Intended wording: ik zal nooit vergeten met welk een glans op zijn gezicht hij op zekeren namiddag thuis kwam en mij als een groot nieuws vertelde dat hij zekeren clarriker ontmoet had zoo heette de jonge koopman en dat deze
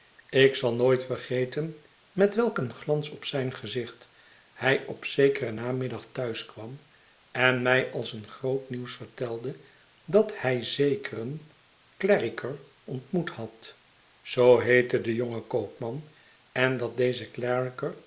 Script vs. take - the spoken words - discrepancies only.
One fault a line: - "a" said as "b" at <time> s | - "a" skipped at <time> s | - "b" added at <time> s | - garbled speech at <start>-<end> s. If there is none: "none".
none